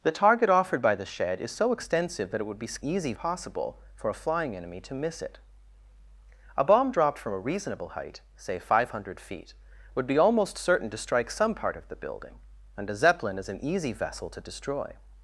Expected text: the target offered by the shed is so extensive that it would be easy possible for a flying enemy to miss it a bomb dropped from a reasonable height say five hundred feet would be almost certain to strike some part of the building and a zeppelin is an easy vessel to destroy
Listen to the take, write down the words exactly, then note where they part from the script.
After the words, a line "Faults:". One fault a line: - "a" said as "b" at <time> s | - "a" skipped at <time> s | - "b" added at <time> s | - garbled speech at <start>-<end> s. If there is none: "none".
the target offered by the shed is so extensive that it would be easy possible for a flying enemy to miss it a bomb dropped from a reasonable height say five hundred feet would be almost certain to strike some part of the building and a zeppelin is an easy vessel to destroy
Faults:
none